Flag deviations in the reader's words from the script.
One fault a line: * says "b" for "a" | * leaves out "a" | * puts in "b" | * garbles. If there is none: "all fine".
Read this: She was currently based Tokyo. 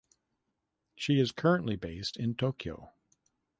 * says "is" for "was"
* puts in "in"